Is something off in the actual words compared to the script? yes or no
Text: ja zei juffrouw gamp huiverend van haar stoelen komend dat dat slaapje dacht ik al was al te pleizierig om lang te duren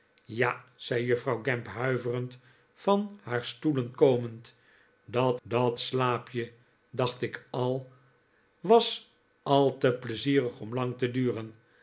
no